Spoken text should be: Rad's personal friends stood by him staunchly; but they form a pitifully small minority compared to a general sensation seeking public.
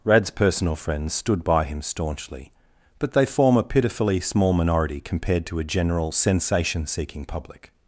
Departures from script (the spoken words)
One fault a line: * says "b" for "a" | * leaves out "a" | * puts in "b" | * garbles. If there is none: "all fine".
all fine